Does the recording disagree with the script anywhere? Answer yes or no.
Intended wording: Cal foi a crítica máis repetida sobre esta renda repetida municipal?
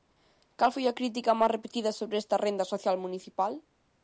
yes